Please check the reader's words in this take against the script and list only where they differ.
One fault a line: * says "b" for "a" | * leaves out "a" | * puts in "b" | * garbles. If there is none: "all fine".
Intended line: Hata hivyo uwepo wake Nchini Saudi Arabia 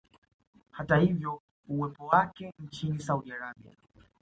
all fine